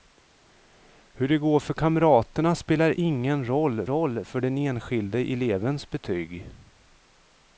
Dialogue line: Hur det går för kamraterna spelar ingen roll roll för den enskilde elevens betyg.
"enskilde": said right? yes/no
yes